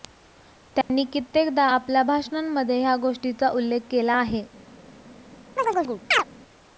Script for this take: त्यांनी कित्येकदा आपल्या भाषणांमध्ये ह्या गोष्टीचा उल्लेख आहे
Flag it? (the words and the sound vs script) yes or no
yes